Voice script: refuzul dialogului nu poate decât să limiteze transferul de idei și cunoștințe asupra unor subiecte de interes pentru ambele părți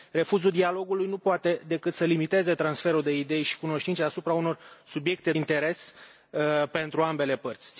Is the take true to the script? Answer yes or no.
no